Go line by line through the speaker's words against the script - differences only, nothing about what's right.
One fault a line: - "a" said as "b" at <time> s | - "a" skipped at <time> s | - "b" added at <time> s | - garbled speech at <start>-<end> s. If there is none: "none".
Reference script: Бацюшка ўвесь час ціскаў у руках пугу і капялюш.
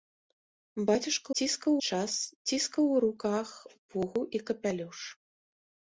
- "ўвесь" said as "ціскаў" at 1.4 s